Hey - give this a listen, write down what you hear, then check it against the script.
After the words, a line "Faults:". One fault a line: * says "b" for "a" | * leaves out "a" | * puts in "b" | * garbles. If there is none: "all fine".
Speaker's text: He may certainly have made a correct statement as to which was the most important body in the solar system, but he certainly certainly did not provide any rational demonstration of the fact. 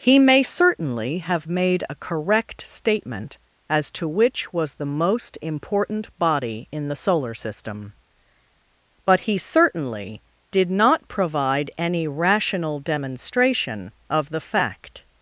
He may certainly have made a correct statement as to which was the most important body in the solar system, but he certainly did not provide any rational demonstration of the fact.
Faults:
* leaves out "certainly"